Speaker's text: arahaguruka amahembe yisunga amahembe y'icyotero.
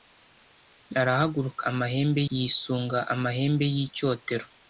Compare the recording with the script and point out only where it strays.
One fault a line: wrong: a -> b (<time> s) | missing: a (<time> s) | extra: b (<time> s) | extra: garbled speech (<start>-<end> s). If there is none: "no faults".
no faults